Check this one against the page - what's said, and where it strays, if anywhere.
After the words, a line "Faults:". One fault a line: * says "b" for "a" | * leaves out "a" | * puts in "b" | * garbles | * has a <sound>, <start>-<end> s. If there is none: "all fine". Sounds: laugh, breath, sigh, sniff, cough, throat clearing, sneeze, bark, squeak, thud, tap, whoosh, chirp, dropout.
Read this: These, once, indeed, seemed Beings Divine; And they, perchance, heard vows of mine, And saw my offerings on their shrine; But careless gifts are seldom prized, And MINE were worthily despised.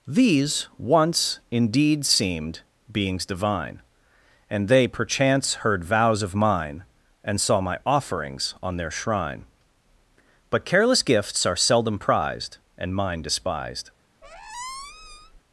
These, once, indeed, seemed Beings Divine; And they, perchance, heard vows of mine, And saw my offerings on their shrine; But careless gifts are seldom prized, And MINE despised.
Faults:
* leaves out "were worthily"
* has a squeak, 14.2-15.4 s